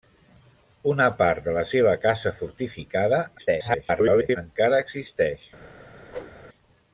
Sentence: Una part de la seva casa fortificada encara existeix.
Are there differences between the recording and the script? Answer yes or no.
yes